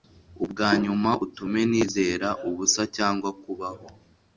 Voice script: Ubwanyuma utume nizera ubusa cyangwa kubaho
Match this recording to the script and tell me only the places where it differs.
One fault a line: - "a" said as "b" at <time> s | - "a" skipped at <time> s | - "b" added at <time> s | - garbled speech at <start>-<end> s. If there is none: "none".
none